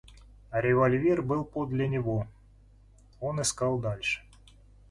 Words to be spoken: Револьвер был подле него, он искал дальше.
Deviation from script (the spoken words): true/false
false